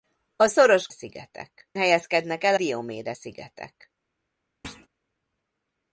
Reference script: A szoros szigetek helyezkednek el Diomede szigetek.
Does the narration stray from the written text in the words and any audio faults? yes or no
yes